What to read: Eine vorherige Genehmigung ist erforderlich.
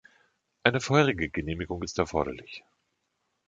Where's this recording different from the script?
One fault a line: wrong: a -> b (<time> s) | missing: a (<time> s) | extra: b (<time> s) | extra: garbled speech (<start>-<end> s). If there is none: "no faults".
no faults